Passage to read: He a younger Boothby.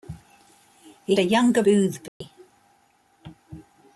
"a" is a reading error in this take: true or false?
false